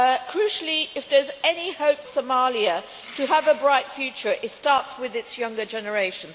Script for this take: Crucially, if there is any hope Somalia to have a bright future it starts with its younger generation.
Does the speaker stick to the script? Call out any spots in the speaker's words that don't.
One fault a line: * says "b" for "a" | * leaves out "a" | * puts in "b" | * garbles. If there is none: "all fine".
all fine